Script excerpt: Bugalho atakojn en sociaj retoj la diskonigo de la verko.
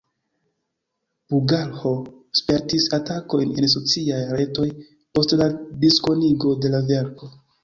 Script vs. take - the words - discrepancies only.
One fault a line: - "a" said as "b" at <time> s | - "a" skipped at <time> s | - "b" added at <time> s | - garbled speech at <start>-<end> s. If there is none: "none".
- "spertis" added at 2.4 s
- "post" added at 5.2 s